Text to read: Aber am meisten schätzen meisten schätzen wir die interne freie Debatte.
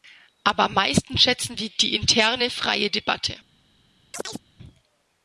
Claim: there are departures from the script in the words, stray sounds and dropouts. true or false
true